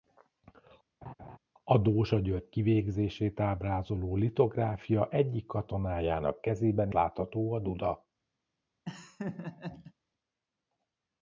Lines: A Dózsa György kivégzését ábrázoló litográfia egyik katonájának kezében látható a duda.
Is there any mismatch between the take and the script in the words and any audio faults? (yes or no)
yes